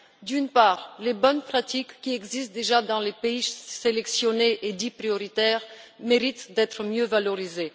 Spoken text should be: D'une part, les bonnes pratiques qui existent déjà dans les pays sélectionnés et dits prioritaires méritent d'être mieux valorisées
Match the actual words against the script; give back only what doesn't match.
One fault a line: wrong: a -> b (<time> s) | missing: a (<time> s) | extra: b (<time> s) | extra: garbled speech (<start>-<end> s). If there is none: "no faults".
no faults